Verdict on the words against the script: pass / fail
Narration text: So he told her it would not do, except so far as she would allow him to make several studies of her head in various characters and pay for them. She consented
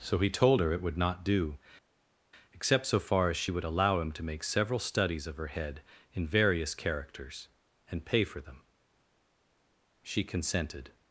pass